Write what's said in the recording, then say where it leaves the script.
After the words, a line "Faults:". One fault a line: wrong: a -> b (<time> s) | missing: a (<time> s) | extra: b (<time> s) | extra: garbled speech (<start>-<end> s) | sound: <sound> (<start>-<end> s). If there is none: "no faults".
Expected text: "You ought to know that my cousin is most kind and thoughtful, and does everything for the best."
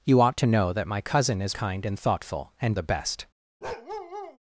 "You ought to know that my cousin is kind and thoughtful, and the best."
Faults:
missing: most (1.6 s)
missing: does everything for (2.8 s)
sound: bark (3.6-4.4 s)